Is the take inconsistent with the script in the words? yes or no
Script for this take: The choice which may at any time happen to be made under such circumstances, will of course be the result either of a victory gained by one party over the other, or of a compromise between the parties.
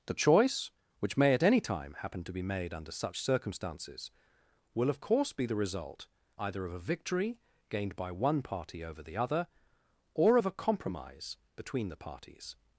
no